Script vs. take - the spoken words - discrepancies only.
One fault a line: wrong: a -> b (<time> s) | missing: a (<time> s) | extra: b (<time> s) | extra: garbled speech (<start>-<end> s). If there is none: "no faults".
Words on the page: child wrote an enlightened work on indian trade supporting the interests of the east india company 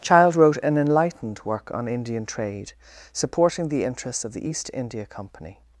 no faults